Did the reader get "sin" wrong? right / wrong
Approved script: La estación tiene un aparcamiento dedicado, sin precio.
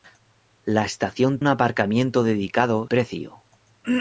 wrong